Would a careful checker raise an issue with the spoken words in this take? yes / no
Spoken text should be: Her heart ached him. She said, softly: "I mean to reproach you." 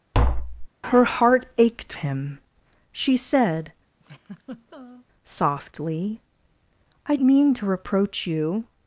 no